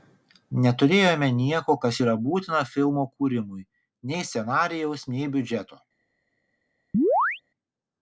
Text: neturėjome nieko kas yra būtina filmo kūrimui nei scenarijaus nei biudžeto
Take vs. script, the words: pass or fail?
pass